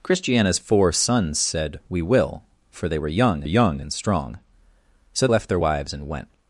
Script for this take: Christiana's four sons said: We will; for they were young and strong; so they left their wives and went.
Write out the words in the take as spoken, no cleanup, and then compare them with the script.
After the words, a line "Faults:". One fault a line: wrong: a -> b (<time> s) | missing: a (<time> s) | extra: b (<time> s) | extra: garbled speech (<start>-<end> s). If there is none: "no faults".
Christiana's four sons said: We will; for they were young young and strong; so left their wives and went.
Faults:
extra: young (3.4 s)
missing: they (5.3 s)